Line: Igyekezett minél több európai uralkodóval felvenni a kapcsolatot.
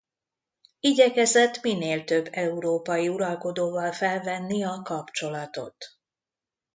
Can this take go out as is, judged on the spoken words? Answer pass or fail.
pass